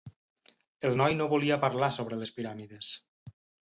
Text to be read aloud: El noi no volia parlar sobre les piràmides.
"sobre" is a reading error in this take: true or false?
false